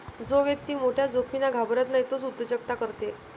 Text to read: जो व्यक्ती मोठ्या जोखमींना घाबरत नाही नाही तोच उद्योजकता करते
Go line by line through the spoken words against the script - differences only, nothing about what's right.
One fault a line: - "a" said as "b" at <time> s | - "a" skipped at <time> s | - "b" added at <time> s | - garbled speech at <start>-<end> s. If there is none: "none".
- "नाही" skipped at 2.0 s